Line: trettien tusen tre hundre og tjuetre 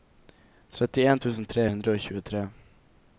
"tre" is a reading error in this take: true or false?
false